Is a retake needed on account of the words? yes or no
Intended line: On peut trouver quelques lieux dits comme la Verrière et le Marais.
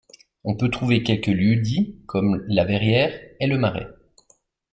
no